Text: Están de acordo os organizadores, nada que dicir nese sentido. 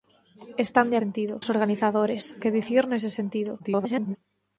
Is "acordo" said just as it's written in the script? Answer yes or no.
no